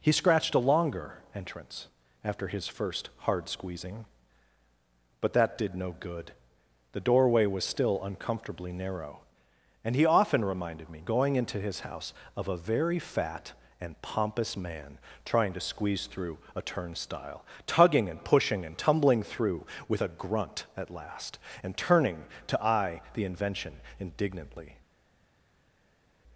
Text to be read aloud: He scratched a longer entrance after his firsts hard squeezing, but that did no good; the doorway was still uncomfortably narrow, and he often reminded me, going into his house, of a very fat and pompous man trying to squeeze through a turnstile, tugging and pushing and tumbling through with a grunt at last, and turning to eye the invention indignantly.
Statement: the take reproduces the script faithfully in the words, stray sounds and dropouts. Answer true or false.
false